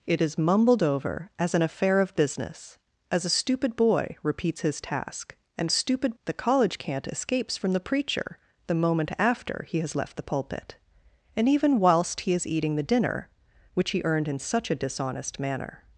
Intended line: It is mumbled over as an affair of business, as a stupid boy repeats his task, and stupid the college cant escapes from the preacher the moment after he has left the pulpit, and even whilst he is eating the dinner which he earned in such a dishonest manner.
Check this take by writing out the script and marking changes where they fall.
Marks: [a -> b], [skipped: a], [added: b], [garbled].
It is mumbled over as an affair of business, as a stupid boy repeats his task, and stupid the college cant escapes from the preacher the moment after he has left the pulpit, and even whilst he is eating the dinner which he earned in such a dishonest manner.